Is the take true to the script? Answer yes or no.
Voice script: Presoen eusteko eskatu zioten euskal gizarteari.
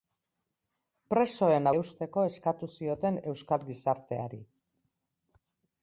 yes